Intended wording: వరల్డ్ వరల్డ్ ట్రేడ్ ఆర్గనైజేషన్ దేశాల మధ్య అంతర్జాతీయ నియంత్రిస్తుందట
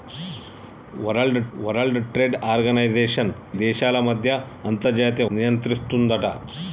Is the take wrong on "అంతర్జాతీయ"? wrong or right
right